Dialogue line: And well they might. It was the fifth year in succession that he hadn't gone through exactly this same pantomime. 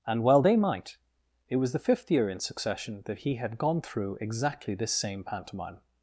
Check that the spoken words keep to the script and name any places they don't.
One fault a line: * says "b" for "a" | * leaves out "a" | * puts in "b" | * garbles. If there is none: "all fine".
* says "had" for "hadn't"